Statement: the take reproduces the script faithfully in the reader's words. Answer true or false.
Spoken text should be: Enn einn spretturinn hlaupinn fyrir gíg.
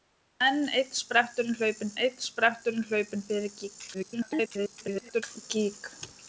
false